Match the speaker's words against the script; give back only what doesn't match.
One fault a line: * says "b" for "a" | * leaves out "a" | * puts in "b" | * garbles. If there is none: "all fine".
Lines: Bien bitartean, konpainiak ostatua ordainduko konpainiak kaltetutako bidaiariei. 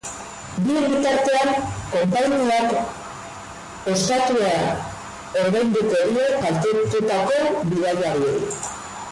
* says "die" for "konpainiak"